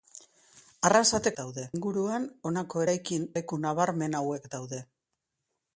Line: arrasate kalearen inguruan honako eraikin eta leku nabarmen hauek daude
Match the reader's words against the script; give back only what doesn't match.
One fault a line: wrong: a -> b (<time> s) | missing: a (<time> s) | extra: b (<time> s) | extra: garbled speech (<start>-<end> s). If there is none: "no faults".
wrong: kalearen -> daude (1.4 s)
missing: eta (3.2 s)